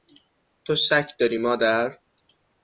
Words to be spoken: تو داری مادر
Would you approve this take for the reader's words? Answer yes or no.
no